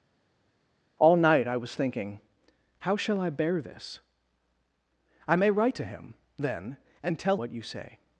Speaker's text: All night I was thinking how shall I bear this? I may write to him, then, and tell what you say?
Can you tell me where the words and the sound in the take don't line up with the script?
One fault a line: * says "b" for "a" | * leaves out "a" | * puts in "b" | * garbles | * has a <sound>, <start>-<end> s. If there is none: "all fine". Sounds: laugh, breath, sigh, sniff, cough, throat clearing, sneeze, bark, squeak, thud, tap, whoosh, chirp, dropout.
all fine